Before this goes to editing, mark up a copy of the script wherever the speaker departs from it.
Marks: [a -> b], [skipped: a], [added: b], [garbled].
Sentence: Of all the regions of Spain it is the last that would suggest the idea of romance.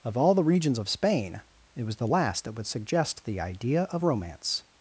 Of all the regions of Spain it [is -> was] the last that would suggest the idea of romance.